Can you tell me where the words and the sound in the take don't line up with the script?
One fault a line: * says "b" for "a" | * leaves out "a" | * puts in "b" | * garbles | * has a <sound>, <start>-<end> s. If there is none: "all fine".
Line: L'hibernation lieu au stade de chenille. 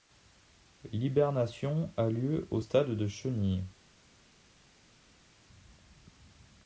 * puts in "a"